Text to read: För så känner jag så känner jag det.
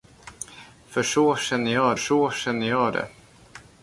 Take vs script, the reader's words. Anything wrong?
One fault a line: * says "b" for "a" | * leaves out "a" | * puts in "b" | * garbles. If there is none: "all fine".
all fine